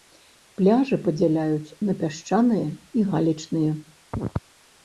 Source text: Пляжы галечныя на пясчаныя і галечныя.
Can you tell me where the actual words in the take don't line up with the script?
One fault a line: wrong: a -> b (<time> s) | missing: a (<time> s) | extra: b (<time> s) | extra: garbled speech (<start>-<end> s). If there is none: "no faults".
wrong: галечныя -> падзяляюць (1.1 s)